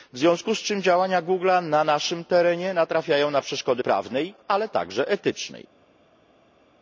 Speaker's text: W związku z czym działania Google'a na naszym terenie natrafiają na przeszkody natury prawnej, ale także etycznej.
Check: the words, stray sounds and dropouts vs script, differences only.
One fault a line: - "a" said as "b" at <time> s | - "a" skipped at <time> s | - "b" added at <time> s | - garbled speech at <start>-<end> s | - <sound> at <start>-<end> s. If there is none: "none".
- "natury" skipped at 3.8 s